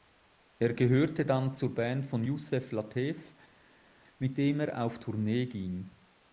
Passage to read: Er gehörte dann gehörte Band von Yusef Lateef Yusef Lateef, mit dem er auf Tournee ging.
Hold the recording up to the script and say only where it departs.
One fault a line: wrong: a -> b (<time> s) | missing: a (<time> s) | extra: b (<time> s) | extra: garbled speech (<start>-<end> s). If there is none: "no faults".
wrong: gehörte -> zur (1.5 s)
missing: Yusef Lateef (3.3 s)